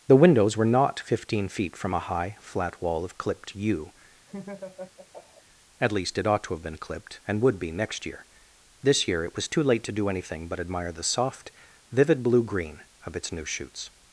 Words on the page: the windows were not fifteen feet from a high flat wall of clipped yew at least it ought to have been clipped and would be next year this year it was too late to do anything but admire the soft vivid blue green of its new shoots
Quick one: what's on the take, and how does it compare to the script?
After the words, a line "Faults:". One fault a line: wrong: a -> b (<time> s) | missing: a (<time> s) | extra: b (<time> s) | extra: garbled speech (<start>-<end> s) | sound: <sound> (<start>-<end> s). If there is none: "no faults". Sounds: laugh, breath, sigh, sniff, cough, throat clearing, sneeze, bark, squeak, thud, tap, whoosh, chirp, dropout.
the windows were not fifteen feet from a high flat wall of clipped yew at least it ought to have been clipped and would be next year this year it was too late to do anything but admire the soft vivid blue green of its new shoots
Faults:
sound: laugh (4.3-5.4 s)